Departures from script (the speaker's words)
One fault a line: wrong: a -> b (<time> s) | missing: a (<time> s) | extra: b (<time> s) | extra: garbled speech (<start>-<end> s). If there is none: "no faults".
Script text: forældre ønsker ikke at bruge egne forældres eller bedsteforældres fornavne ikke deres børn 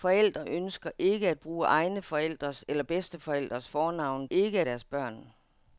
no faults